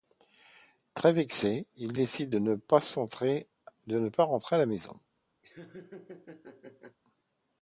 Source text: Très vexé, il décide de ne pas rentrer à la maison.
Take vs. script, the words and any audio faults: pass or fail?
fail